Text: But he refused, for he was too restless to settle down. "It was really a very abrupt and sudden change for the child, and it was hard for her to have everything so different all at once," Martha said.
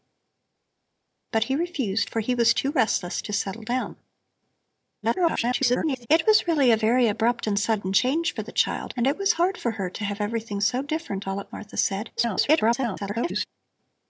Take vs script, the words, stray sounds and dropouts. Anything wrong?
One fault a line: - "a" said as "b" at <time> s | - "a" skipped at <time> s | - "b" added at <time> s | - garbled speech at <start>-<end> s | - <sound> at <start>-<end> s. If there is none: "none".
- garbled speech at 5.0-6.1 s
- "once" skipped at 11.5 s
- garbled speech at 12.2-13.5 s